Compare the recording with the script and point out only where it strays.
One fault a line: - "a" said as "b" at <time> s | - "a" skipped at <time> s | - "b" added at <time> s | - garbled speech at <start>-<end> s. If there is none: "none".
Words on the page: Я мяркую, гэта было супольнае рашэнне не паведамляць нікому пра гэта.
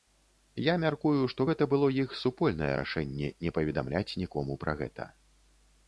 - "што" added at 1.3 s
- "іх" added at 2.0 s